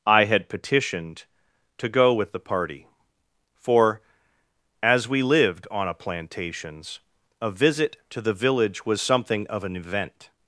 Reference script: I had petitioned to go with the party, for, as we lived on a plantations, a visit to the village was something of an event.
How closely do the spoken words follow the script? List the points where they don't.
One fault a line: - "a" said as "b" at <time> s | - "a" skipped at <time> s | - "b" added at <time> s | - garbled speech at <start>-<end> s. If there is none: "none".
none